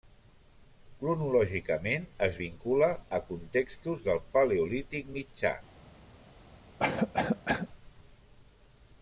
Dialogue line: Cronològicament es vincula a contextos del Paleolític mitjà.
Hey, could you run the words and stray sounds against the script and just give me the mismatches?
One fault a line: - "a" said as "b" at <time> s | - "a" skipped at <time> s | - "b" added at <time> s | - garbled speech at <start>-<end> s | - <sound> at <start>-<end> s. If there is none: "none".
- cough at 6.8-7.7 s